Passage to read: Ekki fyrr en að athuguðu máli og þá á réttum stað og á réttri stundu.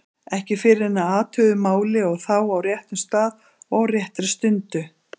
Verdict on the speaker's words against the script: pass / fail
pass